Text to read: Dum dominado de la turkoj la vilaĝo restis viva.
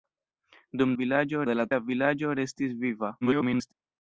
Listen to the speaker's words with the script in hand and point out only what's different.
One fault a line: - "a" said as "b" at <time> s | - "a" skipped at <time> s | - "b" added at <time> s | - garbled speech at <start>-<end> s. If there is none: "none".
- "dominado" said as "vilaĝo" at 1.0 s
- "turkoj" skipped at 1.6 s
- garbled speech at 3.2-3.7 s